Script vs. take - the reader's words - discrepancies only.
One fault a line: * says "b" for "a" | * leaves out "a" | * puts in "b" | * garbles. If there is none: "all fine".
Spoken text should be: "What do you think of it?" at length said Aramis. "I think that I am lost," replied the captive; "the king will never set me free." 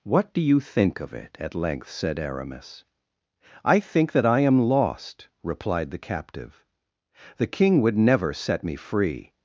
* says "would" for "will"